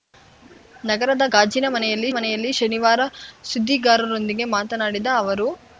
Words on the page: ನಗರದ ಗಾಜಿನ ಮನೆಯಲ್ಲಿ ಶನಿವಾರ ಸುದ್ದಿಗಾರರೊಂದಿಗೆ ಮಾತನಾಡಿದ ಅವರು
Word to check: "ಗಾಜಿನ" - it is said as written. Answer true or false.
true